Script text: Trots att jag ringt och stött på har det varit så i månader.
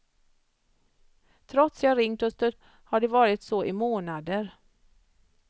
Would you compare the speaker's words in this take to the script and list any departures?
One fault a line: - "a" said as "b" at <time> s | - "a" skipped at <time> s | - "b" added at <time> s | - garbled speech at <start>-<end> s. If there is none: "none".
- "att" skipped at 1.8 s
- "på" skipped at 2.6 s